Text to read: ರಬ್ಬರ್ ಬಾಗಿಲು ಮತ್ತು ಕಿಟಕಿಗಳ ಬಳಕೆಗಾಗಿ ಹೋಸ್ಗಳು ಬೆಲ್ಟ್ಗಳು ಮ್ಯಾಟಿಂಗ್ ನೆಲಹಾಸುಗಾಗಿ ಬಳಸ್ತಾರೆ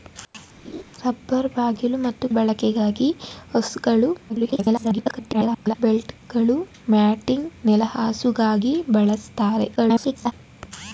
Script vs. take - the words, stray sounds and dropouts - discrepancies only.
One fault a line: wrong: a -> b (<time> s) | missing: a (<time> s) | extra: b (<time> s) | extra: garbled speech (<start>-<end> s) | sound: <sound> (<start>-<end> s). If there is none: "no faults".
sound: laugh (0.6-0.8 s)
missing: ಕಿಟಕಿಗಳ (2.3 s)
extra: garbled speech (4.3-5.8 s)
extra: garbled speech (9.8-10.3 s)